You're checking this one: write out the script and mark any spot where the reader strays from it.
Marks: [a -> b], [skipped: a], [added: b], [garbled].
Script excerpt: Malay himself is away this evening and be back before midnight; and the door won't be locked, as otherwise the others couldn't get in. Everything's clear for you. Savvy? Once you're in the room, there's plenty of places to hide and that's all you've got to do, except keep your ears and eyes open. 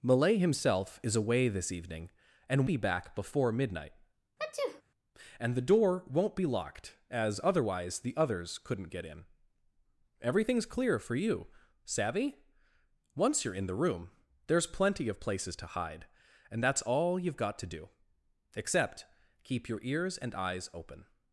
Malay himself is away this evening and be back before midnight; and the door won't be locked, as otherwise the others couldn't get in. Everything's clear for you. Savvy? Once you're in the room, there's plenty of places to hide and that's all you've got to do, except keep your ears and eyes open.